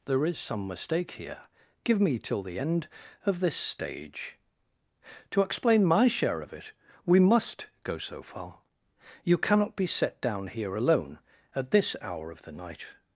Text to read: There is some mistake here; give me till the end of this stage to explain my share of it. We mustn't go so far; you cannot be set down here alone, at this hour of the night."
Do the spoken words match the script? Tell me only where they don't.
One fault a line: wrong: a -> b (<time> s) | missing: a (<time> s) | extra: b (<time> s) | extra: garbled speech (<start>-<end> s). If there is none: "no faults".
wrong: mustn't -> must (7.2 s)